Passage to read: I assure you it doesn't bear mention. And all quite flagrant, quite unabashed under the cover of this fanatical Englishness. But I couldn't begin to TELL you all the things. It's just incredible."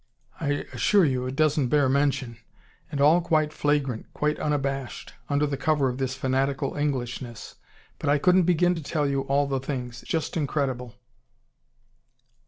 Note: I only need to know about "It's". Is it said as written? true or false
false